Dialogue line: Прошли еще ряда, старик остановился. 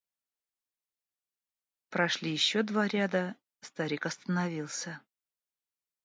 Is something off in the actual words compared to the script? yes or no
yes